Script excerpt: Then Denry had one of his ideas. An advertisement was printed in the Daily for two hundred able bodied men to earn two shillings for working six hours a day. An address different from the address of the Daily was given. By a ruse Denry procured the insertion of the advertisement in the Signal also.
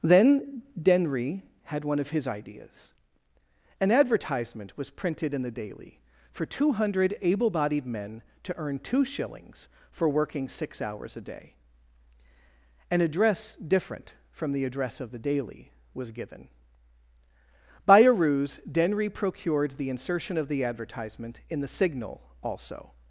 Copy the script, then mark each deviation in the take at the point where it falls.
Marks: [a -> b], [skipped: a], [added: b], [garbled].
Then Denry had one of his ideas. An advertisement was printed in the Daily for two hundred able bodied men to earn two shillings for working six hours a day. An address different from the address of the Daily was given. By a ruse Denry procured the insertion of the advertisement in the Signal also.